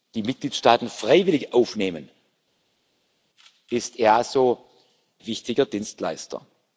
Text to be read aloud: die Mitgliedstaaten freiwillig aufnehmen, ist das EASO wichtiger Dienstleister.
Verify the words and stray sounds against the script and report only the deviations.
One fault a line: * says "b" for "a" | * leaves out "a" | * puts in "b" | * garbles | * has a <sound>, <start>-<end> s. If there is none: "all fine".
all fine